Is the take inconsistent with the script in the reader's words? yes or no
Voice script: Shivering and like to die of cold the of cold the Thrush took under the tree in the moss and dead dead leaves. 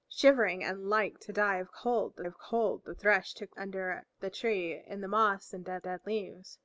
no